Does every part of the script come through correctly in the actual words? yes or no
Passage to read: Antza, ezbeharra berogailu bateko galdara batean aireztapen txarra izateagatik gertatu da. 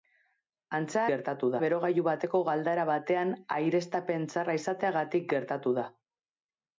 no